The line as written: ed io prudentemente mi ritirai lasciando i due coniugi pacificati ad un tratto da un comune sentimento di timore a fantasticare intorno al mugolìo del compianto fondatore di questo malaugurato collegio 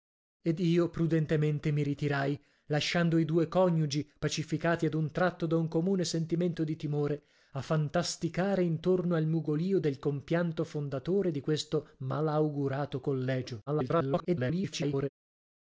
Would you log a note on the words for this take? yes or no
yes